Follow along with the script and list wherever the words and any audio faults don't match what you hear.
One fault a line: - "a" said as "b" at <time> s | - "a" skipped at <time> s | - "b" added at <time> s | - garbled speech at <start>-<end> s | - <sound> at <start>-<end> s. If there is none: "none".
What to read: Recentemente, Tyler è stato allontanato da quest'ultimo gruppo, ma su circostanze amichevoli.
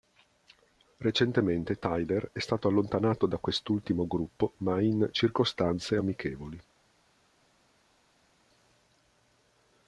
- "su" said as "in" at 4.8 s